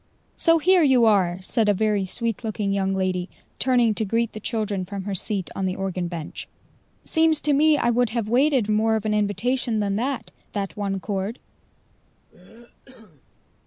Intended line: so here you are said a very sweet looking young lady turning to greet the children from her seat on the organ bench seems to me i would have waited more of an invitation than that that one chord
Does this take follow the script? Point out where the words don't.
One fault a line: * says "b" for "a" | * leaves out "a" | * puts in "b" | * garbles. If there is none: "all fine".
all fine